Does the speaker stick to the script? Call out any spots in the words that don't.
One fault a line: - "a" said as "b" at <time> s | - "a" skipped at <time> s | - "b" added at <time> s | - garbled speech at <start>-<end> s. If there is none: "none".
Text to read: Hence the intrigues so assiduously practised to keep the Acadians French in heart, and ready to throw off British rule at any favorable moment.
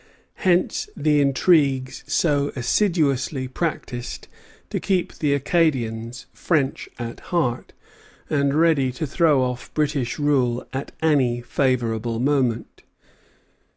- "in" said as "at" at 7.0 s